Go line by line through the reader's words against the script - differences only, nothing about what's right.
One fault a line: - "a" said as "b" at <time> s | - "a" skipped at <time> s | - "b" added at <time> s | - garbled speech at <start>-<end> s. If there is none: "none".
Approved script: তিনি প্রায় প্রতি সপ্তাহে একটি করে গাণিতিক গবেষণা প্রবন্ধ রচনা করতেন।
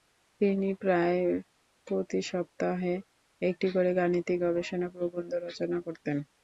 none